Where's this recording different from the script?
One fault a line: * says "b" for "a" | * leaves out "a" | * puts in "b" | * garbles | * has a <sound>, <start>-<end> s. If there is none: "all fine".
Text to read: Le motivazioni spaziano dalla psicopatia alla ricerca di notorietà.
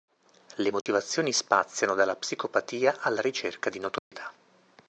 * has a dropout, 0.8-0.9 s
* has a dropout, 4.0-4.1 s